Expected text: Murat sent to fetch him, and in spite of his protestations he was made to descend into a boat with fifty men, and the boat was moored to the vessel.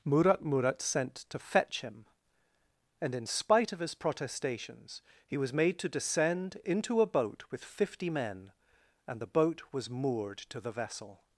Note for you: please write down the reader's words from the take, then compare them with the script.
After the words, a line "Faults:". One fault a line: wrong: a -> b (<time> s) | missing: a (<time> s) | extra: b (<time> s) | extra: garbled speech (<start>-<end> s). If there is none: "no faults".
Murat murat sent to fetch him, and in spite of his protestations he was made to descend into a boat with fifty men, and the boat was moored to the vessel.
Faults:
extra: murat (0.4 s)